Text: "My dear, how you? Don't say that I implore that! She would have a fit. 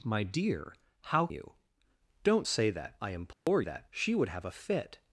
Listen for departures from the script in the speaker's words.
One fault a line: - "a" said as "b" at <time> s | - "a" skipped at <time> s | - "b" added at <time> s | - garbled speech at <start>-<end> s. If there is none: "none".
none